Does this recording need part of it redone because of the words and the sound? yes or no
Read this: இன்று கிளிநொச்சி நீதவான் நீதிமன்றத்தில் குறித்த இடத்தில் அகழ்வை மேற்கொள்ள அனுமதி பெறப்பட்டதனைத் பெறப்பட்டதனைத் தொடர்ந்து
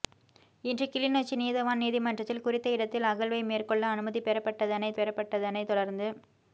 no